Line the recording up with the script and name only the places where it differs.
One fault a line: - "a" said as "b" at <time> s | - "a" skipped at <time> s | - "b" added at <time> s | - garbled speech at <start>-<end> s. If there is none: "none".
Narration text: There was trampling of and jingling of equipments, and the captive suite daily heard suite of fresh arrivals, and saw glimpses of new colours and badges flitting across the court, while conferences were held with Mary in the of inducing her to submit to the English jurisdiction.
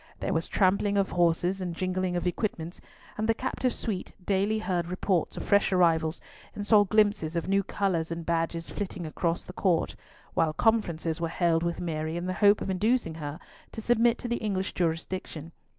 - "horses" added at 1.1 s
- "suite" said as "reports" at 4.9 s
- "hope" added at 12.3 s